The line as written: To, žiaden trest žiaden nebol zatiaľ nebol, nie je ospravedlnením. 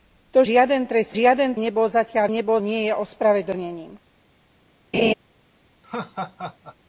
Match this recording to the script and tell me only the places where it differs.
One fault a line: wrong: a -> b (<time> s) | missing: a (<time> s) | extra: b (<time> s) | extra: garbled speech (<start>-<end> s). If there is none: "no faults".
no faults